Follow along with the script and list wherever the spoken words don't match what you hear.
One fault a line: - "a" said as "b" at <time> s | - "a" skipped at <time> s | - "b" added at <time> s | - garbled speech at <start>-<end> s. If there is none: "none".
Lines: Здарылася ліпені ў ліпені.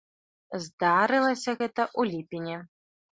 - "ліпені" said as "гэта" at 1.6 s